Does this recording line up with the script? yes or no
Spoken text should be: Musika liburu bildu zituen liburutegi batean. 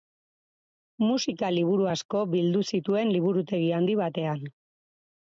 no